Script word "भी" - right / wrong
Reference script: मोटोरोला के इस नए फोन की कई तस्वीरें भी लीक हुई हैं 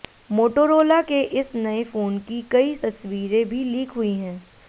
right